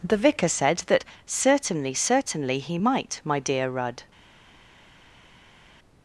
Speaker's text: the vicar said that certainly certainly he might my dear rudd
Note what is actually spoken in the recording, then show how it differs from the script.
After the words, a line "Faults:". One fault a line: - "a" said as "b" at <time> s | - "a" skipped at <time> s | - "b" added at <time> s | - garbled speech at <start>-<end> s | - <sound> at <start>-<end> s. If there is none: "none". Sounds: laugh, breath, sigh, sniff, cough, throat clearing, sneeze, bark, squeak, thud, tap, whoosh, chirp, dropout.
the vicar said that certainly certainly he might my dear rudd
Faults:
none